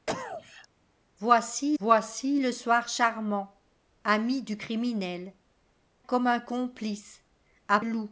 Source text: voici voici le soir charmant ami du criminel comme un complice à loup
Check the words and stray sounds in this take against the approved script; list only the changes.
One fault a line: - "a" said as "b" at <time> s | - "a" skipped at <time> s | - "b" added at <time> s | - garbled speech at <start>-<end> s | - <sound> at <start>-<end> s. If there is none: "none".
- cough at 0.1-0.7 s